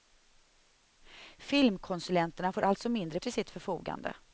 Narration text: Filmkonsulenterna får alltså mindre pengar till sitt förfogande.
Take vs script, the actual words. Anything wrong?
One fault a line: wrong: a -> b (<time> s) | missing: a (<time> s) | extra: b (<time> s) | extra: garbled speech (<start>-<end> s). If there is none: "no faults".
missing: pengar (3.2 s)